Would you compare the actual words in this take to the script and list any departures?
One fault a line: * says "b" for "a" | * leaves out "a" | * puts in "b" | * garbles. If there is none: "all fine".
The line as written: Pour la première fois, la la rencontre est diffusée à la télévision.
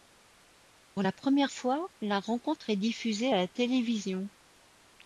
* leaves out "la"